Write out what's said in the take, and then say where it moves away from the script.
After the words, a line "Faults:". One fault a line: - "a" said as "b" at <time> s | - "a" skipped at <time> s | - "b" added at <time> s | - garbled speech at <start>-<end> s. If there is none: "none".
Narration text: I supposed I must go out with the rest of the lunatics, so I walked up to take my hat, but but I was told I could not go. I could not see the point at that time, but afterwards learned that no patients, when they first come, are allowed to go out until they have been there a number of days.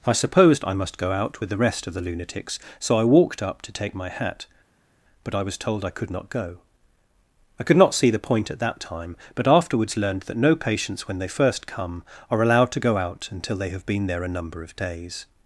I supposed I must go out with the rest of the lunatics, so I walked up to take my hat, but I was told I could not go. I could not see the point at that time, but afterwards learned that no patients, when they first come, are allowed to go out until they have been there a number of days.
Faults:
- "but" skipped at 5.4 s